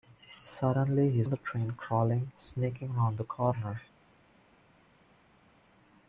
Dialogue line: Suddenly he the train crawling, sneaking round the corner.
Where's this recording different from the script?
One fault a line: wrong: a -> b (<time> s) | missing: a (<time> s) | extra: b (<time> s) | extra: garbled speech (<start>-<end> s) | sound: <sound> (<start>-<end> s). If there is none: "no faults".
no faults